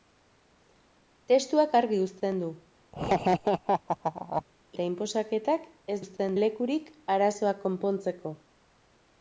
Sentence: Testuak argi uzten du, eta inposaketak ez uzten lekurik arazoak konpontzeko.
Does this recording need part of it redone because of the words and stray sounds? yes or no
yes